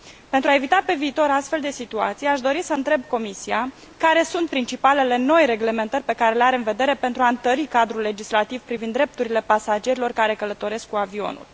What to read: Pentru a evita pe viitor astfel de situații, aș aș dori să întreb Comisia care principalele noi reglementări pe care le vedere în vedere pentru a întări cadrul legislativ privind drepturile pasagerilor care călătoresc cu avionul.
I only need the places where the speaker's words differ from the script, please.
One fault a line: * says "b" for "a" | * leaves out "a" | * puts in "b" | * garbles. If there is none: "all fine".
* leaves out "aș"
* puts in "sunt"
* says "are" for "vedere"